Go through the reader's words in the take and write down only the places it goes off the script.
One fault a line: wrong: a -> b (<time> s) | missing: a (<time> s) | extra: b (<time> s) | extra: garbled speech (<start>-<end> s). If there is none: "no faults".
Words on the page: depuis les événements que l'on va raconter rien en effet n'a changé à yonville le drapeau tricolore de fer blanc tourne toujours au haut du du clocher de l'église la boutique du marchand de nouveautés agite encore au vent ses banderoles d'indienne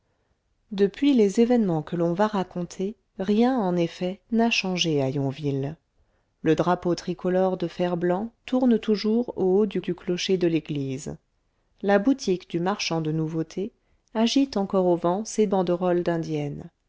no faults